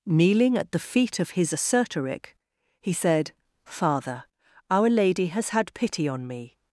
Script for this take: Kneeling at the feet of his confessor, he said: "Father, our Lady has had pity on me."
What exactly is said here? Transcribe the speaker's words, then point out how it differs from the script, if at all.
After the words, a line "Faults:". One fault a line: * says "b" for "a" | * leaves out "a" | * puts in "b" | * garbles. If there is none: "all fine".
Kneeling at the feet of his assertoric, he said: "Father, our Lady has had pity on me."
Faults:
* says "assertoric" for "confessor"